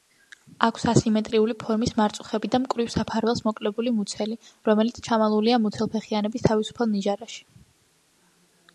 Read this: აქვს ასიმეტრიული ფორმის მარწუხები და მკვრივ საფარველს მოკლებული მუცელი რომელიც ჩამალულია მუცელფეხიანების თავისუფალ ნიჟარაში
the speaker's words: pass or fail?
pass